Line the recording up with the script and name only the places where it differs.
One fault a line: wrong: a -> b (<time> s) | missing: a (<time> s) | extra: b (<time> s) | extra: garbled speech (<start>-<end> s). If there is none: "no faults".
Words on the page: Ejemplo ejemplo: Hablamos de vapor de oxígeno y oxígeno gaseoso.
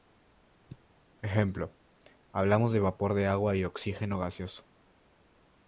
missing: ejemplo (1.8 s)
wrong: oxígeno -> agua (3.3 s)